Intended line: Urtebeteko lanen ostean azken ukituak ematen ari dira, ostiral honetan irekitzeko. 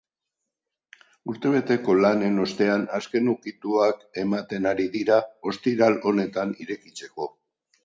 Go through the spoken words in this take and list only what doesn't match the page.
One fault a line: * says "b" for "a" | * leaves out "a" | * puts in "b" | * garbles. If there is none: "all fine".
all fine